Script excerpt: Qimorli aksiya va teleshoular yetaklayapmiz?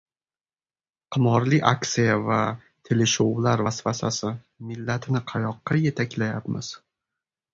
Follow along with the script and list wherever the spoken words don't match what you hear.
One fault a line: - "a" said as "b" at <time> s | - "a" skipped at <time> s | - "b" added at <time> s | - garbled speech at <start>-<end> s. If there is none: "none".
- "vasvasasi Millatni qayoqqa" added at 3.7 s